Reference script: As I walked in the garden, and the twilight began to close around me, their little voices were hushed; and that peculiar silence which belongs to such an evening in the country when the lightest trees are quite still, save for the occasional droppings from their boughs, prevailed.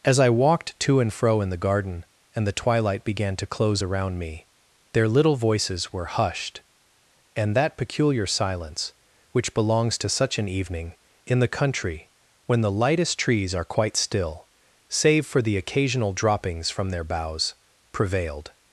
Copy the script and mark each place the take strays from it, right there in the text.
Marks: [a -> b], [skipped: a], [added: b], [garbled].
As I walked [added: to and fro] in the garden, and the twilight began to close around me, their little voices were hushed; and that peculiar silence which belongs to such an evening in the country when the lightest trees are quite still, save for the occasional droppings from their boughs, prevailed.